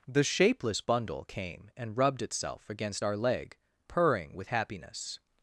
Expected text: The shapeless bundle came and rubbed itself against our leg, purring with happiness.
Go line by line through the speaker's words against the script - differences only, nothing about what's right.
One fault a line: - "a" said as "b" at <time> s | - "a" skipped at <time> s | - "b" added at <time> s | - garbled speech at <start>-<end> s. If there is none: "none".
none